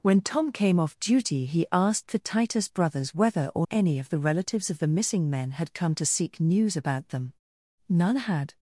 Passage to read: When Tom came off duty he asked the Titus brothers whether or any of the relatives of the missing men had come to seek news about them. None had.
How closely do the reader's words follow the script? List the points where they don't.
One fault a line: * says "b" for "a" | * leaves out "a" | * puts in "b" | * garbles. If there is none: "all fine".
all fine